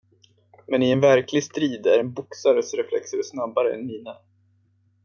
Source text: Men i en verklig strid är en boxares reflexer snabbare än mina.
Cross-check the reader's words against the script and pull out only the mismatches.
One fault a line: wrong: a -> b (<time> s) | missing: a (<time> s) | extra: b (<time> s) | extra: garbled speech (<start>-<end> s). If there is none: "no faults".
no faults